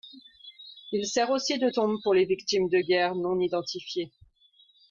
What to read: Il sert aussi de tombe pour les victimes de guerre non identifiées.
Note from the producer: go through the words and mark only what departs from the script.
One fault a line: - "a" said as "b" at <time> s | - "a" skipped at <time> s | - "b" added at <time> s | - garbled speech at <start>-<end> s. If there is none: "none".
none